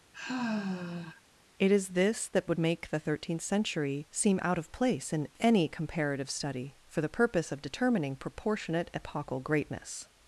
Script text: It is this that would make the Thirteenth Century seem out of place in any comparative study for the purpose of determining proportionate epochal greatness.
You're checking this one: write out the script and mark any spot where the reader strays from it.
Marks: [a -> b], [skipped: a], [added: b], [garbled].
It is this that would make the Thirteenth Century seem out of place in any comparative study for the purpose of determining proportionate epochal greatness.